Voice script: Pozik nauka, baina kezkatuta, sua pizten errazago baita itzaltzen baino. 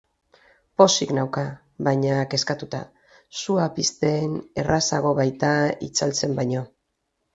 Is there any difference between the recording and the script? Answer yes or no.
no